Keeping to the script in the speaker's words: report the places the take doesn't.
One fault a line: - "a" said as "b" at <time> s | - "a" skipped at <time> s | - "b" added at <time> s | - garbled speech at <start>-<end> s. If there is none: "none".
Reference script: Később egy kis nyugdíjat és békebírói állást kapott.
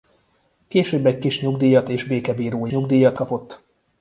- "állást" said as "nyugdíjat" at 2.7 s